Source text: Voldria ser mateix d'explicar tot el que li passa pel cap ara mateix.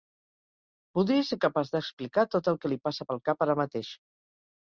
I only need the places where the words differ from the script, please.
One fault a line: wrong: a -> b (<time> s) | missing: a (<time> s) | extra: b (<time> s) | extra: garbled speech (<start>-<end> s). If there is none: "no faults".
wrong: mateix -> capaç (1.4 s)